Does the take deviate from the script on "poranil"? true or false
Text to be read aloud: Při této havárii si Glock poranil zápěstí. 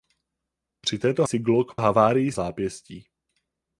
true